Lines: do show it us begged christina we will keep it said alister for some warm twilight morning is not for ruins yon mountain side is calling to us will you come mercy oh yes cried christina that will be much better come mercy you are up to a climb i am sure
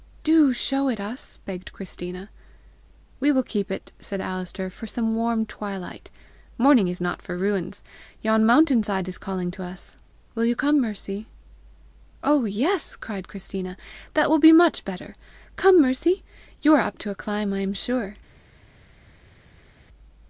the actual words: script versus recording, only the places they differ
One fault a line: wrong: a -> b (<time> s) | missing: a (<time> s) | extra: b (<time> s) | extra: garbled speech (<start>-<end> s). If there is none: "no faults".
no faults